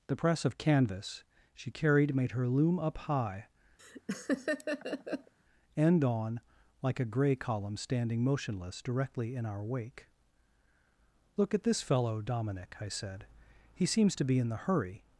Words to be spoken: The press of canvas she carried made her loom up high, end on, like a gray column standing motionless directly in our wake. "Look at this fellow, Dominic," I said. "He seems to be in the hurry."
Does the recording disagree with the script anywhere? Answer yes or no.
no